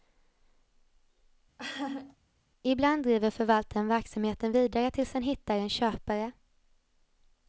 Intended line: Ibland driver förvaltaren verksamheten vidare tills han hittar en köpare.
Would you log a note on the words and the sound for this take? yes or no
yes